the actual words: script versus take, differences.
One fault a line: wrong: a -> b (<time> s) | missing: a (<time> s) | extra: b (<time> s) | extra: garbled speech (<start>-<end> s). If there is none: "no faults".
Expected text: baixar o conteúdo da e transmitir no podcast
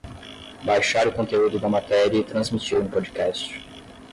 extra: matéria (1.7 s)